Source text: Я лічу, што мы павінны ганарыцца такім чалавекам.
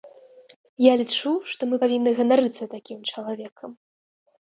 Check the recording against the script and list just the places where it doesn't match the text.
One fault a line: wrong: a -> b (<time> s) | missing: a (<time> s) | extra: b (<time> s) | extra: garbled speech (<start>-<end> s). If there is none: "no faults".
no faults